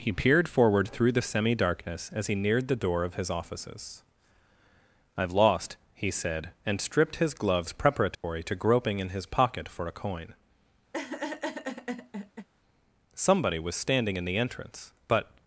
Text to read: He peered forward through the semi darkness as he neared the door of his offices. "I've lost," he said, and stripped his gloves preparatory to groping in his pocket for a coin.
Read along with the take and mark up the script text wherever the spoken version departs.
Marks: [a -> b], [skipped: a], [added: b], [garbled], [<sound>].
He peered forward through the semi darkness as he neared the door of his offices. "I've lost," he said, and stripped his gloves preparatory [dropout] to groping in his pocket for a coin. [laugh] [added: Somebody was standing in the entrance but]